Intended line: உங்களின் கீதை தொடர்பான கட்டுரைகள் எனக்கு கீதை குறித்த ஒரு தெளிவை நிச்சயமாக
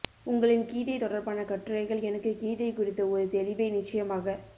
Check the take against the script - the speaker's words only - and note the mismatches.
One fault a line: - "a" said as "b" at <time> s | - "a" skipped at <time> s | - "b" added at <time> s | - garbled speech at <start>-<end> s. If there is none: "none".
none